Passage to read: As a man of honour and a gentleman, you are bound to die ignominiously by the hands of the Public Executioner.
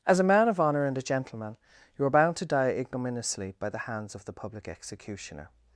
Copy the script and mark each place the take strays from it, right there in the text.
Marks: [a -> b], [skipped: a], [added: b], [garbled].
As a man of honour and a gentleman, you are bound to die ignominiously by the hands of the Public Executioner.